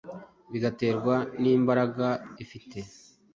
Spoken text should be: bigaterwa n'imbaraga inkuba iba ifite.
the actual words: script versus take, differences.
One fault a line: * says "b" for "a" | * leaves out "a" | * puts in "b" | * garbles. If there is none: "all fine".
* leaves out "inkuba iba"